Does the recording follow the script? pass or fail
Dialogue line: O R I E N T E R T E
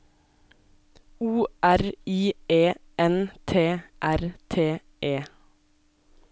fail